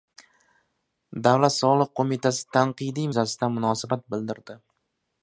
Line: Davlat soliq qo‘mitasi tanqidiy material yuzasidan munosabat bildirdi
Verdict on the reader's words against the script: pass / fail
fail